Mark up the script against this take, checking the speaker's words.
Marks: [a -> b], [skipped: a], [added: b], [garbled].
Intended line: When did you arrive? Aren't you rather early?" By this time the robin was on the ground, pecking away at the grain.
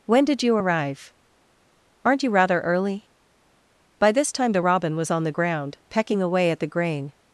When did you arrive? Aren't you rather early?" By this time the robin was on the ground, pecking away at the grain.